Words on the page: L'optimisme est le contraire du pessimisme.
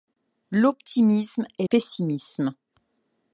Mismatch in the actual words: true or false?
true